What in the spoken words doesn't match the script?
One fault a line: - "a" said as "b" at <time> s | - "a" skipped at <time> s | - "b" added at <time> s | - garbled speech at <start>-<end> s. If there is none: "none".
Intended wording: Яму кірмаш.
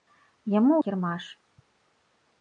none